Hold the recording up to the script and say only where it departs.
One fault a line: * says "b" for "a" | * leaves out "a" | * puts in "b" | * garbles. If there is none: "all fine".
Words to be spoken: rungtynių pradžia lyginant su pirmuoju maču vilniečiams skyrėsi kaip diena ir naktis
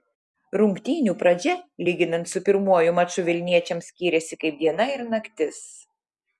all fine